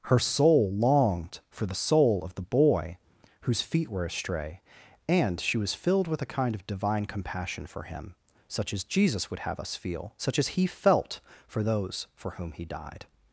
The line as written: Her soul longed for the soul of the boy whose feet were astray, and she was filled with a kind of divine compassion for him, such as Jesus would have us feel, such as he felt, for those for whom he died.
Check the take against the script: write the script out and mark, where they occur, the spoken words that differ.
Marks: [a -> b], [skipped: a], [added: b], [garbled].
Her soul longed for the soul of the boy whose feet were astray, and she was filled with a kind of divine compassion for him, such as Jesus would have us feel, such as he felt, for those for whom he died.